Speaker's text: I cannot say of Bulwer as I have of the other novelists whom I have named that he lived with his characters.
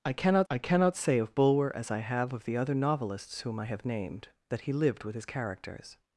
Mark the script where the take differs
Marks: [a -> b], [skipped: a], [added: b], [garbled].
I cannot [added: I cannot] say of Bulwer as I have of the other novelists whom I have named that he lived with his characters.